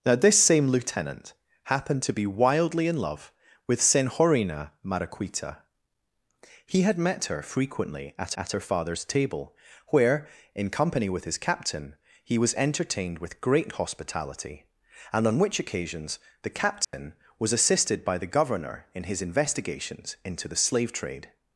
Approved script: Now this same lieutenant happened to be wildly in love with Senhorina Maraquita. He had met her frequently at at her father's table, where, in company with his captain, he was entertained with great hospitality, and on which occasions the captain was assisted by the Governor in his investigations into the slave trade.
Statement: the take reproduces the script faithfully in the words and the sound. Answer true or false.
false